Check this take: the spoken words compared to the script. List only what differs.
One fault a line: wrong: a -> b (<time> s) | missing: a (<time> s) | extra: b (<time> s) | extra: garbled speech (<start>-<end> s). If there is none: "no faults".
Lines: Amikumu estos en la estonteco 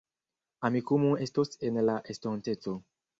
no faults